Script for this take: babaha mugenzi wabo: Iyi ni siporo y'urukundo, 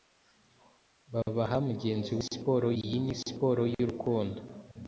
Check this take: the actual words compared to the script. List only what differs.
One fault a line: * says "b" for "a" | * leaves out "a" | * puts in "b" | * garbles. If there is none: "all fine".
* says "siporo" for "wabo"